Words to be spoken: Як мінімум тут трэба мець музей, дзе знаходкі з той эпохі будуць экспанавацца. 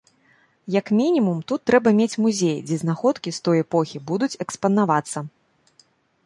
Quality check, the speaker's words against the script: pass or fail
pass